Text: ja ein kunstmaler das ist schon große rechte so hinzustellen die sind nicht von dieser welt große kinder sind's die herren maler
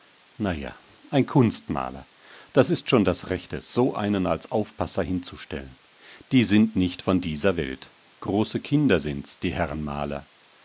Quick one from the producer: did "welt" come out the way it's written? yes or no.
yes